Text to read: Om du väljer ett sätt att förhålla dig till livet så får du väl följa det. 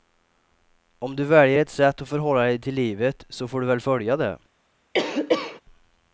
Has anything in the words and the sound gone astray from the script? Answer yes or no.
yes